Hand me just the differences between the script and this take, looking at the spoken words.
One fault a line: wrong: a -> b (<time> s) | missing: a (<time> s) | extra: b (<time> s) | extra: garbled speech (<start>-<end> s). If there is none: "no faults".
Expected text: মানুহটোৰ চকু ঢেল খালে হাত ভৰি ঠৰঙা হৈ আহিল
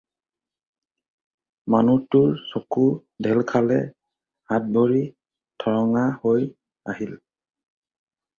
no faults